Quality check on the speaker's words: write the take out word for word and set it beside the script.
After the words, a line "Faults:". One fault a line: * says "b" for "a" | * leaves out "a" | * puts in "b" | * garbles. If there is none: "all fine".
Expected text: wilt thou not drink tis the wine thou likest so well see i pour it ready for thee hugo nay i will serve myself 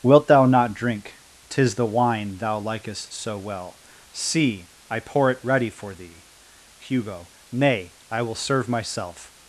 wilt thou not drink tis the wine thou likest so well see i pour it ready for thee hugo nay i will serve myself
Faults:
all fine